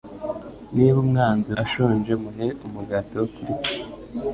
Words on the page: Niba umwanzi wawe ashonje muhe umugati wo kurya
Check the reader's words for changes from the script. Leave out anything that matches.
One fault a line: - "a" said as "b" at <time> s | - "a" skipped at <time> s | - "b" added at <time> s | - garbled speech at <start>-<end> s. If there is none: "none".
- "wawe" skipped at 1.5 s